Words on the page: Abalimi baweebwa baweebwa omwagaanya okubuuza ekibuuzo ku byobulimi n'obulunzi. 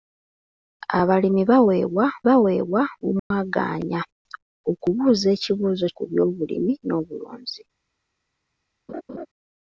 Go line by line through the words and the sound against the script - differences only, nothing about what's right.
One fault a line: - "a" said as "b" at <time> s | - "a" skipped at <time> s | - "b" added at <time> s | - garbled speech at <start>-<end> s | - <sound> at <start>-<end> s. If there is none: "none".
- dropout at 3.2-3.3 s
- laugh at 8.9-9.3 s